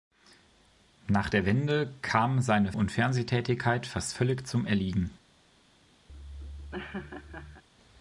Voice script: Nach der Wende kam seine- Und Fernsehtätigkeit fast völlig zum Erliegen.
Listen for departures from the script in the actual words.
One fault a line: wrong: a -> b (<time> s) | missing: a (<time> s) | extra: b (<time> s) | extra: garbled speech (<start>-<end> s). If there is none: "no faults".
no faults